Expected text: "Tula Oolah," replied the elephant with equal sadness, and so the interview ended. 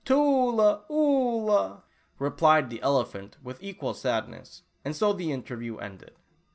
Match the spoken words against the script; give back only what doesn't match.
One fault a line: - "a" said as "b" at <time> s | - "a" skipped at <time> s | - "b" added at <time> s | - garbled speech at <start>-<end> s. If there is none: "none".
none